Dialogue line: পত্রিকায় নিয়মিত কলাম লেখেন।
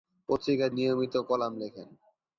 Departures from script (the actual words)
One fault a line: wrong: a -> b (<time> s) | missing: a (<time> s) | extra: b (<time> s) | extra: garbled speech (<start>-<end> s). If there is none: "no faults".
no faults